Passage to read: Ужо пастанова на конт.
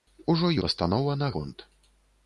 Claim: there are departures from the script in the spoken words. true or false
false